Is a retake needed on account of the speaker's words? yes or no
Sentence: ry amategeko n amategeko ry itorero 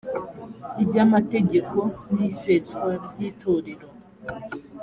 yes